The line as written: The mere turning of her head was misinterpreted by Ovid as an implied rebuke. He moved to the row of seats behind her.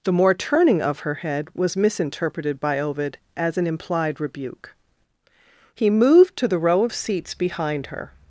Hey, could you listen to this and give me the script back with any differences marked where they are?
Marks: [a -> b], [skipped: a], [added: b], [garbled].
The [mere -> more] turning of her head was misinterpreted by Ovid as an implied rebuke. He moved to the row of seats behind her.